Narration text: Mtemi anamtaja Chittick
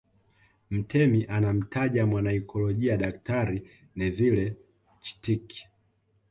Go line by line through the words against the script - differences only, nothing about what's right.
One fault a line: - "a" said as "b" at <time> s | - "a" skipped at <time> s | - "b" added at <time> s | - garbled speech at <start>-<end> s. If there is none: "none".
- "mwanaikolojia Daktari Neville" added at 2.0 s